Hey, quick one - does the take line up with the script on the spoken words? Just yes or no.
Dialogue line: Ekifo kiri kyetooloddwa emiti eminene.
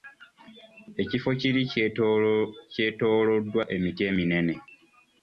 yes